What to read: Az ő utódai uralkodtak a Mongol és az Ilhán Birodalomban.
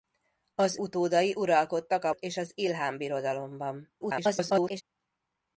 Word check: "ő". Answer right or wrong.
wrong